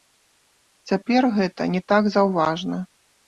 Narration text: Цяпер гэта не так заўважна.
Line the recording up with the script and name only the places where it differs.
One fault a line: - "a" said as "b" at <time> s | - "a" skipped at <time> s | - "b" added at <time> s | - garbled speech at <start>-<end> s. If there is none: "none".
none